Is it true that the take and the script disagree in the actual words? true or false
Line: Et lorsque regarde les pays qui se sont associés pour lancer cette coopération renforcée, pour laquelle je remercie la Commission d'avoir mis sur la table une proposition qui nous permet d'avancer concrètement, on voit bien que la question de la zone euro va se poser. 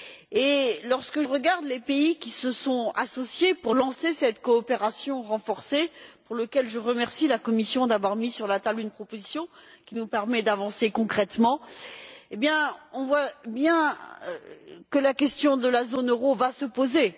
false